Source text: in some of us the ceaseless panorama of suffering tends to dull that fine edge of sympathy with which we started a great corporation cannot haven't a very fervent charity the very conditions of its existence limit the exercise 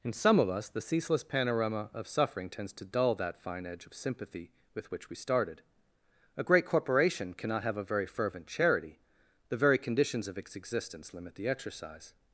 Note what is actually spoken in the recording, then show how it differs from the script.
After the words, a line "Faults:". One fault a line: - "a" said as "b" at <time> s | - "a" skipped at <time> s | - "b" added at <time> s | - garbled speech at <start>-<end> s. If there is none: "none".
in some of us the ceaseless panorama of suffering tends to dull that fine edge of sympathy with which we started a great corporation cannot have a very fervent charity the very conditions of its existence limit the exercise
Faults:
- "haven't" said as "have" at 7.6 s